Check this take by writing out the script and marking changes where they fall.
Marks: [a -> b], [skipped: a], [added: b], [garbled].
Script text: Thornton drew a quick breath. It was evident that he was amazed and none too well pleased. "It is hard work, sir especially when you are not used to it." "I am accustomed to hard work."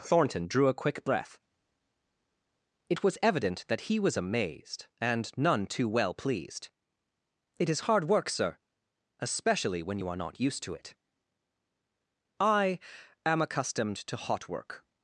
Thornton drew a quick breath. It was evident that he was amazed and none too well pleased. "It is hard work, sir especially when you are not used to it." "I am accustomed to [hard -> hot] work."